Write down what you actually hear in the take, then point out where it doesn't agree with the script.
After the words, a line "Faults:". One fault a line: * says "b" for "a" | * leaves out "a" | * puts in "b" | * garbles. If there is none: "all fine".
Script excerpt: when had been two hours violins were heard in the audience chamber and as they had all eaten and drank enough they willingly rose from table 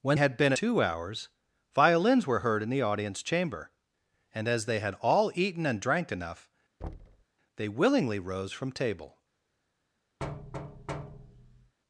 when had been two hours violins were heard in the audience chamber and as they had all eaten and drank enough they willingly rose from table
Faults:
all fine